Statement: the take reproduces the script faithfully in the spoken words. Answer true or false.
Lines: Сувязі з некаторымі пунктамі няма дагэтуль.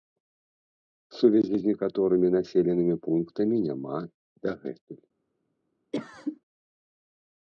false